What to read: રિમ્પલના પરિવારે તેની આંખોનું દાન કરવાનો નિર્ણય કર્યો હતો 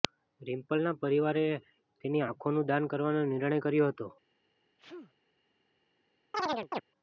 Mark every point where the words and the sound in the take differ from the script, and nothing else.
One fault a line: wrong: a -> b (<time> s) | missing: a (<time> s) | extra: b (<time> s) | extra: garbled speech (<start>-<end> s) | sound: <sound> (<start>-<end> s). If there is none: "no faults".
sound: sneeze (4.8-5.1 s)
sound: chirp (6.3-6.8 s)